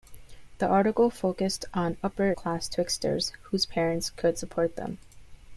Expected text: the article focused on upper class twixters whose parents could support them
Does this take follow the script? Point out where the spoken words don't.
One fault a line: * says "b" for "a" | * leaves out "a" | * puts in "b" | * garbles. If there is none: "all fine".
all fine